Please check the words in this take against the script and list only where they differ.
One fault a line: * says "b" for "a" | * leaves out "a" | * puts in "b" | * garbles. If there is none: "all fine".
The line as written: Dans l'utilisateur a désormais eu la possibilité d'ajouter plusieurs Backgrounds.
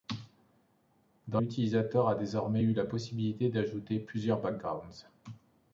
all fine